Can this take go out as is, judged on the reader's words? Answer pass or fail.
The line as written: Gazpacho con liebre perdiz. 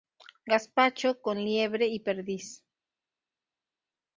fail